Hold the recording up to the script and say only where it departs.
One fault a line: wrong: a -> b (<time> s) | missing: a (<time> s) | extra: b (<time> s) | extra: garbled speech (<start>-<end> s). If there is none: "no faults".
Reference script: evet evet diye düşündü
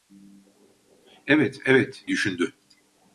missing: diye (2.0 s)